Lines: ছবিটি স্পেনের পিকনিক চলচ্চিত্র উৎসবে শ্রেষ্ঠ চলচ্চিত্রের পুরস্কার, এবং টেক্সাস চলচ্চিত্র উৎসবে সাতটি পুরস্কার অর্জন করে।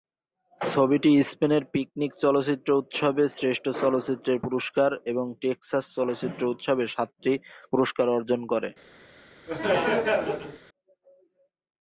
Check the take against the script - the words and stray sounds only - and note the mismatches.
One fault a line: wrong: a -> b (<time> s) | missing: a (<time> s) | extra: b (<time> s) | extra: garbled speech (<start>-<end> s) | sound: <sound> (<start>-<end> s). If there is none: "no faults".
sound: laugh (9.5-10.6 s)